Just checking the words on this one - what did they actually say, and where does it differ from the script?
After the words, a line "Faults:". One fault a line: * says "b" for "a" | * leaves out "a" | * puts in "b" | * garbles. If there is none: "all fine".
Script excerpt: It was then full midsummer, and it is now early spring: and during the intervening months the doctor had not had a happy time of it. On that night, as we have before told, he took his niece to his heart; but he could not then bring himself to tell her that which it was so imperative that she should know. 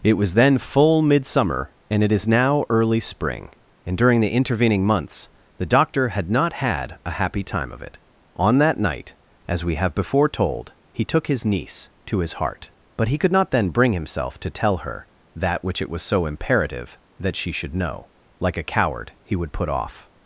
It was then full midsummer, and it is now early spring: and during the intervening months the doctor had not had a happy time of it. On that night, as we have before told, he took his niece to his heart; but he could not then bring himself to tell her that which it was so imperative that she should know. Like a coward, he would put off
Faults:
* puts in "Like a coward he would put off"